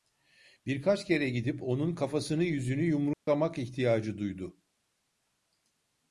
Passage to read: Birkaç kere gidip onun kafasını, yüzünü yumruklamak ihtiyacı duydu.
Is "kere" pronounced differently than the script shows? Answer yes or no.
no